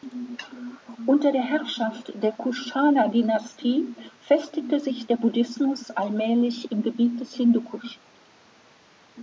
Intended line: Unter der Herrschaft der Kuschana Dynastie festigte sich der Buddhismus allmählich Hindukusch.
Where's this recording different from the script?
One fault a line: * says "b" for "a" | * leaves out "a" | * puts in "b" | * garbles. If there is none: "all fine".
* puts in "im Gebiet des"